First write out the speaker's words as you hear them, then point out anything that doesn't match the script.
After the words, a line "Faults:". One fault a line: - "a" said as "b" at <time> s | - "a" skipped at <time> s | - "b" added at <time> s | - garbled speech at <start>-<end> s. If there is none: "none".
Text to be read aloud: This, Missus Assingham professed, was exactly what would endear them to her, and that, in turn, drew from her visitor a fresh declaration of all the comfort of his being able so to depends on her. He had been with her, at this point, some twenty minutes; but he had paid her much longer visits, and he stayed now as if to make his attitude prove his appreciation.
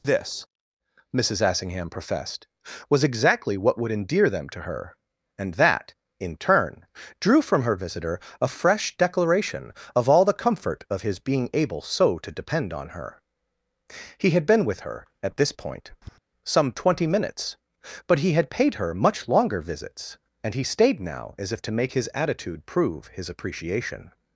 This, Missus Assingham professed, was exactly what would endear them to her, and that, in turn, drew from her visitor a fresh declaration of all the comfort of his being able so to depend on her. He had been with her, at this point, some twenty minutes; but he had paid her much longer visits, and he stayed now as if to make his attitude prove his appreciation.
Faults:
- "depends" said as "depend" at 12.3 s